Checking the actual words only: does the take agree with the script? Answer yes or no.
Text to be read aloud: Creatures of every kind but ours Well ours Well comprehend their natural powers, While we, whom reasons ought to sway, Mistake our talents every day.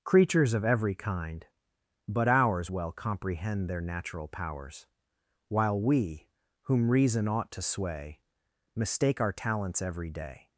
no